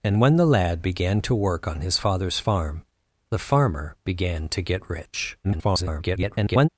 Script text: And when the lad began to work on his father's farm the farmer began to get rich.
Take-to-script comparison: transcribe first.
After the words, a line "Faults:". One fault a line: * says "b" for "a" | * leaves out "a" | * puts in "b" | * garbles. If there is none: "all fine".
And when the lad began to work on his father's farm the farmer began to get rich. [garbled]
Faults:
* garbles